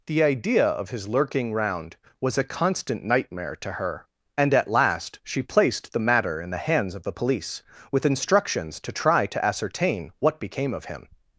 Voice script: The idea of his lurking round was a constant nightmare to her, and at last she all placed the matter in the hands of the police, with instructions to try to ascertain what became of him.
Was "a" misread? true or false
false